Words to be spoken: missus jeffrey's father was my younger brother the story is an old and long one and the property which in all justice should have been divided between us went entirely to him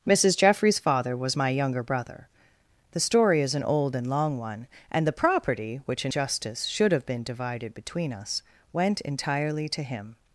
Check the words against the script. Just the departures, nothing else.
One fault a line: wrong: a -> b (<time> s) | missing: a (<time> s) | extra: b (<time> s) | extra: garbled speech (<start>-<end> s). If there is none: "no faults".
missing: all (6.1 s)